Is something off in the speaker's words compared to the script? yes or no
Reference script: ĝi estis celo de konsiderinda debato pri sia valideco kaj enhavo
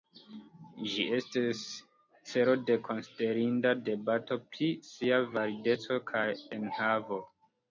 no